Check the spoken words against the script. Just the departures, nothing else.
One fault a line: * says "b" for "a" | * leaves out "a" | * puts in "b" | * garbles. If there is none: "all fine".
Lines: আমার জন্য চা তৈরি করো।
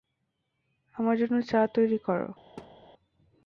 all fine